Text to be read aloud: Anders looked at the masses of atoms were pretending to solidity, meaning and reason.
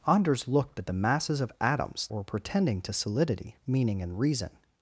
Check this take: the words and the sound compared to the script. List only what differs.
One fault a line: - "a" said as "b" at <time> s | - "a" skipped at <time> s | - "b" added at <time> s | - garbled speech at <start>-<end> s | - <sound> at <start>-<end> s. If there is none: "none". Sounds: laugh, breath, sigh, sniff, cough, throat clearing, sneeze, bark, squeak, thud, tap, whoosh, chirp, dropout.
none